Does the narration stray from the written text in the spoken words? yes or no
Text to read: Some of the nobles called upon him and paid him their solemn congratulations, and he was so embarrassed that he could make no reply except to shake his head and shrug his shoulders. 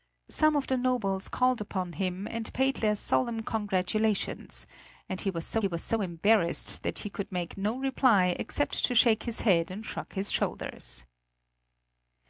yes